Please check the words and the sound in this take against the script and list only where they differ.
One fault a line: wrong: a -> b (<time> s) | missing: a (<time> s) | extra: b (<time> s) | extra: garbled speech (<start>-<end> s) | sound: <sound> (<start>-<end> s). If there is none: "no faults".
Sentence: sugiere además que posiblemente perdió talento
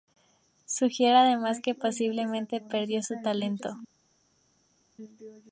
extra: su (3.0 s)